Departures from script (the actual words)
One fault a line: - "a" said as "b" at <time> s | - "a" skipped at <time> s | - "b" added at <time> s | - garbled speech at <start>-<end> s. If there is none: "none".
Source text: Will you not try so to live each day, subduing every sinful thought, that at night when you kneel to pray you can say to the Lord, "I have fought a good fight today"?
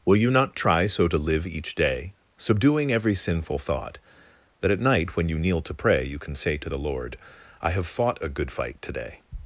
none